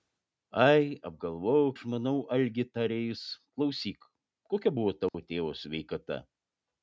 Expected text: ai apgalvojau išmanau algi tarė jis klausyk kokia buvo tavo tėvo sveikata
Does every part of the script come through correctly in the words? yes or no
yes